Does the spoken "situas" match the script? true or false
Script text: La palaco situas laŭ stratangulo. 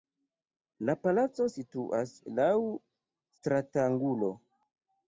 true